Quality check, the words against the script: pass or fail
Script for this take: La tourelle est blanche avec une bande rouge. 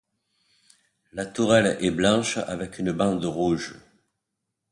pass